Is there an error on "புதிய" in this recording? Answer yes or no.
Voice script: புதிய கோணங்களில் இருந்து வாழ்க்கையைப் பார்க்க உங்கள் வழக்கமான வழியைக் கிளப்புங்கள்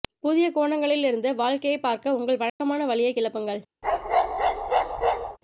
no